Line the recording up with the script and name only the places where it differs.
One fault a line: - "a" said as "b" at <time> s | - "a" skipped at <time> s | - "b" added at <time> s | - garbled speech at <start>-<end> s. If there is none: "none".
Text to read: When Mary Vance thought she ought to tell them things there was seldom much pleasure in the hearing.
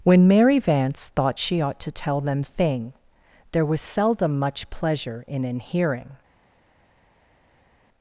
- "things" said as "thing" at 2.4 s
- "the" said as "an" at 5.4 s